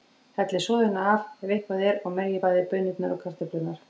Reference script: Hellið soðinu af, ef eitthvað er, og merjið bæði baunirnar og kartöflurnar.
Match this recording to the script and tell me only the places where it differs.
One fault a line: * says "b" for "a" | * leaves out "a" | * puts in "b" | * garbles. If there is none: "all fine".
all fine